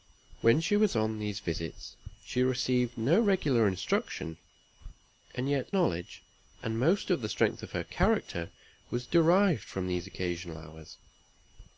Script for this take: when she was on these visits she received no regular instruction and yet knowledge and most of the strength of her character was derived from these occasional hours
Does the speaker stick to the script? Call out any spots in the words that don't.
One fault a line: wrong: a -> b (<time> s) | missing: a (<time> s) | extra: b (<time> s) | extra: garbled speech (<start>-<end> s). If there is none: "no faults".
no faults